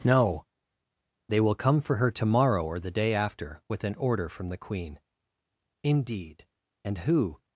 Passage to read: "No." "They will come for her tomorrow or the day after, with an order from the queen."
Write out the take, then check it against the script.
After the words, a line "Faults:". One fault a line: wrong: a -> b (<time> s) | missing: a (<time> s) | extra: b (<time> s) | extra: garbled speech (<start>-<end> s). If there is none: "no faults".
"No." "They will come for her tomorrow or the day after, with an order from the queen." "Indeed! And who
Faults:
extra: Indeed And who (5.8 s)